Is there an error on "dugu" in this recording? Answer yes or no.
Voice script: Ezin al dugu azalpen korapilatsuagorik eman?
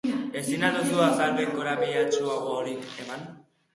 yes